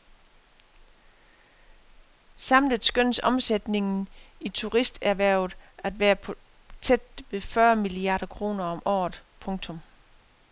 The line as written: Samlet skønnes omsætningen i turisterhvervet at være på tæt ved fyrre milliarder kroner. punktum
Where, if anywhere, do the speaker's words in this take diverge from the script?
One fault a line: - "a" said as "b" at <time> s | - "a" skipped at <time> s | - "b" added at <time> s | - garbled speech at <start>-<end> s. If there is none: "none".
- "om året" added at 8.6 s